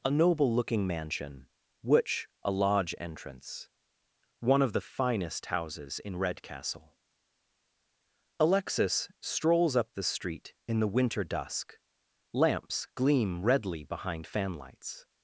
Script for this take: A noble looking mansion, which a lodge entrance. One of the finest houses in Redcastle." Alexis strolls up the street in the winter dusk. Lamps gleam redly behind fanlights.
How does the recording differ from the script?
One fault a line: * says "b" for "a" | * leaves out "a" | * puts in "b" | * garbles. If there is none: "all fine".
all fine